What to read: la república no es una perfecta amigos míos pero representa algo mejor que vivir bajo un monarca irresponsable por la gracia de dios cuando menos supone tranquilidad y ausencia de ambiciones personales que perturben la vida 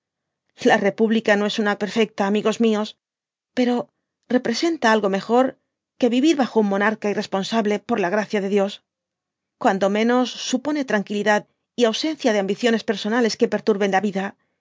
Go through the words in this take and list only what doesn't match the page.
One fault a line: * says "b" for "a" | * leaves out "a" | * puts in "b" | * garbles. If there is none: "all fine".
all fine